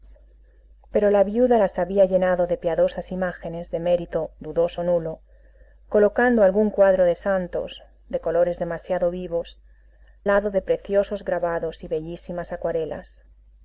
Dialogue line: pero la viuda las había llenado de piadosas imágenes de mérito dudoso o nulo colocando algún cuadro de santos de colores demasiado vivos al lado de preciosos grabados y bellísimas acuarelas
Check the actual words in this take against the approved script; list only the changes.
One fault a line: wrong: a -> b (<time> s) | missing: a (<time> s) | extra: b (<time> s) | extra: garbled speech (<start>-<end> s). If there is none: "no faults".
missing: al (9.6 s)